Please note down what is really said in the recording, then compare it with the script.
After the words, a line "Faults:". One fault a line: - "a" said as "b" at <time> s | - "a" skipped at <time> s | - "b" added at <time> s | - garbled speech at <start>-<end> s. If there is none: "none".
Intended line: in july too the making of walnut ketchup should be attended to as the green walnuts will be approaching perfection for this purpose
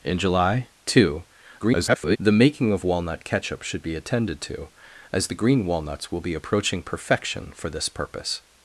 in july too [garbled] the making of walnut ketchup should be attended to as the green walnuts will be approaching perfection for this purpose
Faults:
- garbled speech at 1.6-2.2 s